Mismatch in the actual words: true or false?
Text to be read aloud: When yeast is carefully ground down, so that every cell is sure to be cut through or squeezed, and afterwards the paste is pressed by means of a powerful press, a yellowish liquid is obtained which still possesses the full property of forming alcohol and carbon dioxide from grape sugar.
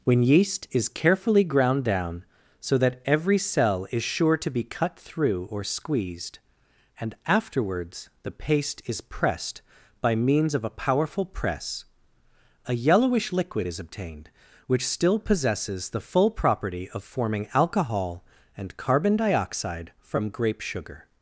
false